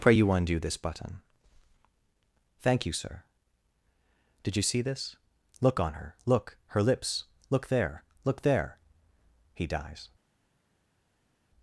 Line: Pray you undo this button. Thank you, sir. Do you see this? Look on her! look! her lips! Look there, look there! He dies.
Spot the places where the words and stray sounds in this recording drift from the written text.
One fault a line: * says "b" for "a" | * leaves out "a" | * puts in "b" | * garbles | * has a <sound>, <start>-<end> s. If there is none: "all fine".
* says "Did" for "Do"